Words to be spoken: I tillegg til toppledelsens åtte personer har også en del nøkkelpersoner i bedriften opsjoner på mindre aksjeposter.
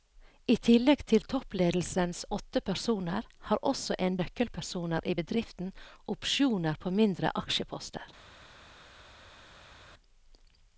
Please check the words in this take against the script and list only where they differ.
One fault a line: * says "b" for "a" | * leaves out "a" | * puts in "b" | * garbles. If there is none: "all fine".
* leaves out "del"